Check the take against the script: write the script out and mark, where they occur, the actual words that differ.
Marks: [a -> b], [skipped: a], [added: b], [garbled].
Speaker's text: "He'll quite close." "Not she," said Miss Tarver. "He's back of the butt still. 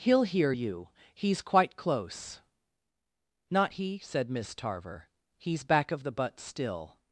"He'll [added: hear you He's] quite close." "Not [she," -> he] said Miss Tarver. "He's back of the butt still.